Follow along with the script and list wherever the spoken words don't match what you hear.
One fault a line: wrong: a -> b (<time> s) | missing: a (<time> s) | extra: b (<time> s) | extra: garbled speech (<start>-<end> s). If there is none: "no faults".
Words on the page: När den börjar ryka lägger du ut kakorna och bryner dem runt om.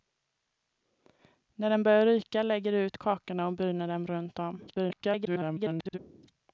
extra: garbled speech (4.7-6.0 s)